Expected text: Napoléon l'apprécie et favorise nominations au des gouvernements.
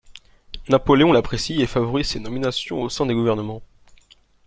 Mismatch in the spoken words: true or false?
true